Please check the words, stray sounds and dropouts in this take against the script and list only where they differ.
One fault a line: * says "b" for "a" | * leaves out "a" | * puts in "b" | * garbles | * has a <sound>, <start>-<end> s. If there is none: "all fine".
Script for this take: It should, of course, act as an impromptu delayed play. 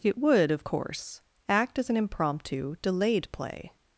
* says "would" for "should"